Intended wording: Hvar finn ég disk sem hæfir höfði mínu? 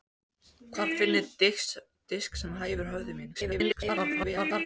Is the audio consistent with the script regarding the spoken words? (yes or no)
no